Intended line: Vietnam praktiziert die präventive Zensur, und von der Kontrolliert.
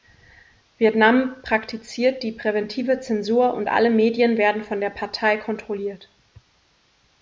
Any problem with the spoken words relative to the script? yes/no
yes